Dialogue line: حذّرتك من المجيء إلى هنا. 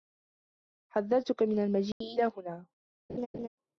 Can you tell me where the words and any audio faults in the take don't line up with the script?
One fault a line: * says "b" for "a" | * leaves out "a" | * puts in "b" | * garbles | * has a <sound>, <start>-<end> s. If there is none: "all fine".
* has a dropout, 1.9-2.0 s
* has a laugh, 3.1-3.5 s